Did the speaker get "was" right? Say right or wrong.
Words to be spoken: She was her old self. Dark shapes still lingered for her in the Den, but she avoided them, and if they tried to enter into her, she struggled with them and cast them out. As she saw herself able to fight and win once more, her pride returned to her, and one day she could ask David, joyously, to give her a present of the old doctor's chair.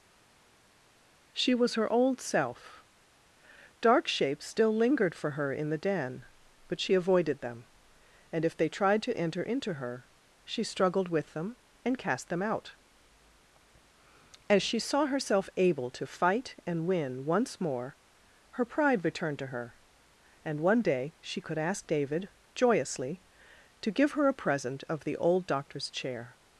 right